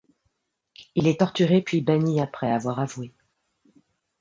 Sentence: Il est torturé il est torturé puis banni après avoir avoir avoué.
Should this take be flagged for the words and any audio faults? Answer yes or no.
yes